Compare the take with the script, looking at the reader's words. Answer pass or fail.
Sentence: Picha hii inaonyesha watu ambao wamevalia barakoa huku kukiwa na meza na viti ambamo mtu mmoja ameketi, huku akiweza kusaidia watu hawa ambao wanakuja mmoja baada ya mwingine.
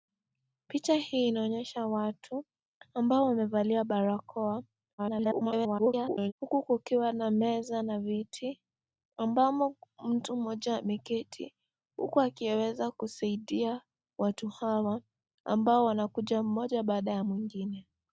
fail